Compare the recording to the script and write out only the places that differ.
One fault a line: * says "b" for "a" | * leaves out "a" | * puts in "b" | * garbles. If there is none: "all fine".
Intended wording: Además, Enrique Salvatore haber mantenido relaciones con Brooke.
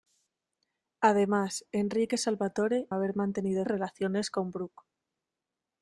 all fine